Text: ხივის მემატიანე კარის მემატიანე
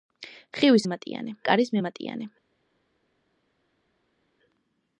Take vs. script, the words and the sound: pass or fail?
pass